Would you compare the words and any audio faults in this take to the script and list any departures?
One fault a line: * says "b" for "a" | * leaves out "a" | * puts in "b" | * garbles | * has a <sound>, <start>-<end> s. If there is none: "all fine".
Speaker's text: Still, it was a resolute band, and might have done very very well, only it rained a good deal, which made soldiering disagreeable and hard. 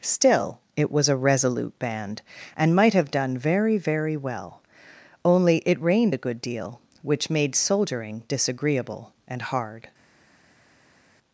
all fine